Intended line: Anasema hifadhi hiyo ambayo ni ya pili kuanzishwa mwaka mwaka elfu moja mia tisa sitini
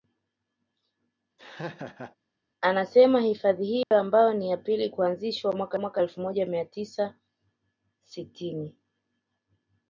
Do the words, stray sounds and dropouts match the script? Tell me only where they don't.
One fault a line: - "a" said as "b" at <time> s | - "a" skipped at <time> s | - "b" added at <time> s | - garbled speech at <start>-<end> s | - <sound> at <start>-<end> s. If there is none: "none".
- laugh at 1.4-2.2 s
- dropout at 3.8-3.9 s